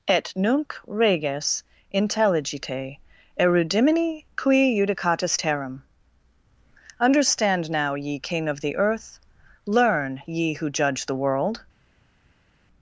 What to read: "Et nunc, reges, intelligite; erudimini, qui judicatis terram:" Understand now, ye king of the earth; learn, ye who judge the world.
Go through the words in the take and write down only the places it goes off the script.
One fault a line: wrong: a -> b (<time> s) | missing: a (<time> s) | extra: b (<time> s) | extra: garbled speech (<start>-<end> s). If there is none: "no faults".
no faults